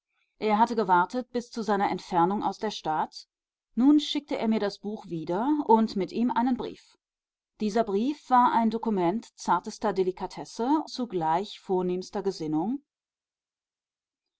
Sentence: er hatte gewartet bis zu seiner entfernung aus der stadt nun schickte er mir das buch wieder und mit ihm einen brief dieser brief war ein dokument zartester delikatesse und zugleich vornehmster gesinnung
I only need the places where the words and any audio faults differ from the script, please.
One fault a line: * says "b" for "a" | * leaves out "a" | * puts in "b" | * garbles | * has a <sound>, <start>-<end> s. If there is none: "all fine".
* leaves out "und"